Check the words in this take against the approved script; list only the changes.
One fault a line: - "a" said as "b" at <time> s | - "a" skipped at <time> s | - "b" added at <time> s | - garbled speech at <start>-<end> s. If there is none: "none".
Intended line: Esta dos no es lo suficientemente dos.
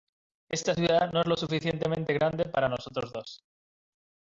- "dos" said as "ciudad" at 0.7 s
- "grande para nosotros" added at 2.1 s